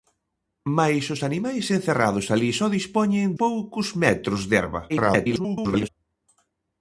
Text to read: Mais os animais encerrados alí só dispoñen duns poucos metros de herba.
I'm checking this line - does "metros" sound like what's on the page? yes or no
yes